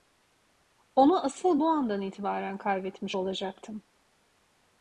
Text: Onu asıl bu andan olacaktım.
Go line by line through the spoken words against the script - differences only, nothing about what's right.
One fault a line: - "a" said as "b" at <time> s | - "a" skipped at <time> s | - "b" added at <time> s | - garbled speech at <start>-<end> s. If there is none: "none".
- "itibaren kaybetmiş" added at 2.0 s